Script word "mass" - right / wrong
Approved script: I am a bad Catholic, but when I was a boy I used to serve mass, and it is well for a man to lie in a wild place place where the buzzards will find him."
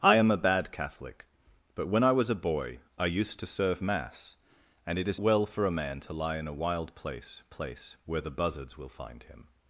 right